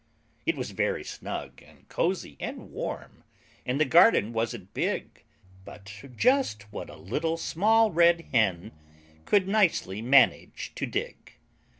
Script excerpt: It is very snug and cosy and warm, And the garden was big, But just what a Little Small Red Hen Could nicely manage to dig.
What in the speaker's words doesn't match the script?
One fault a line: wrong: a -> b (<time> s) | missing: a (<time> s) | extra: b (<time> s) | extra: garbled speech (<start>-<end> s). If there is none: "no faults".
wrong: is -> was (0.6 s)
wrong: was -> wasn't (4.3 s)